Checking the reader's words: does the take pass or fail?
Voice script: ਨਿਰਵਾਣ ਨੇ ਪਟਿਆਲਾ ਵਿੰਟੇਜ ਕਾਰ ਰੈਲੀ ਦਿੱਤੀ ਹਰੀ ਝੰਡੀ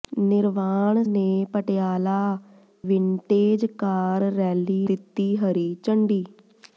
pass